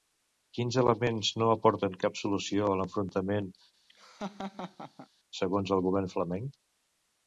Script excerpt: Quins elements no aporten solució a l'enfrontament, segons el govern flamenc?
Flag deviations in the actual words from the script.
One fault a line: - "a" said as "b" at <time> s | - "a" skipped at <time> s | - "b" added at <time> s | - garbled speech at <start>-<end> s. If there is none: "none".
- "cap" added at 2.0 s